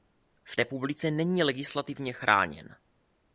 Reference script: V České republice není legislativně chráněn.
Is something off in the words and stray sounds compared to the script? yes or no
yes